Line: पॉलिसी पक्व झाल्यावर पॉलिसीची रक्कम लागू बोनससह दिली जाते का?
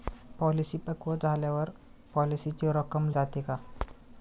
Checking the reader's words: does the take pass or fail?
fail